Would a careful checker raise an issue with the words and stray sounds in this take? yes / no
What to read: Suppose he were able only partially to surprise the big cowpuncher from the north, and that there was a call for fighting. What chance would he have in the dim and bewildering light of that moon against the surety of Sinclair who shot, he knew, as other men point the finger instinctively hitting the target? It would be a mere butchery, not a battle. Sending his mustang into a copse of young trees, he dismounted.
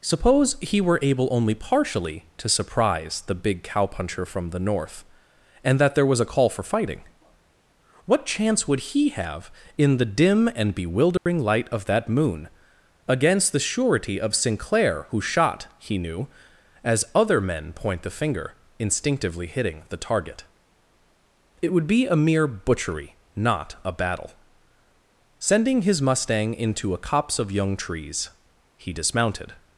yes